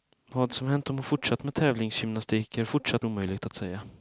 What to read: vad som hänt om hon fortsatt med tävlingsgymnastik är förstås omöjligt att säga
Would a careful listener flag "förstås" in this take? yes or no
yes